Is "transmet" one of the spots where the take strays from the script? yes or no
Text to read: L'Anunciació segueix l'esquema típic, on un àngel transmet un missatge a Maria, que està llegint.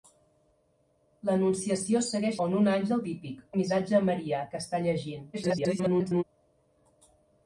yes